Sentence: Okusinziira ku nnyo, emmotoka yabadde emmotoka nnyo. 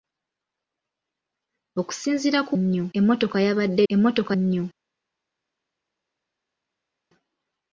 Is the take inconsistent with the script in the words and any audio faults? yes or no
no